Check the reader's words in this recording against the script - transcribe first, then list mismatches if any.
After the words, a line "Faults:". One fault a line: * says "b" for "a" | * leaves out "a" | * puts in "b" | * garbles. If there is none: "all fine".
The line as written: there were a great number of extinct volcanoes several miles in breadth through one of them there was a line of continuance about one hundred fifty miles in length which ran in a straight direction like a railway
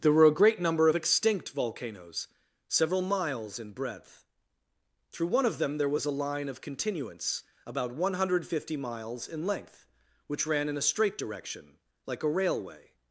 there were a great number of extinct volcanoes several miles in breadth through one of them there was a line of continuance about one hundred fifty miles in length which ran in a straight direction like a railway
Faults:
all fine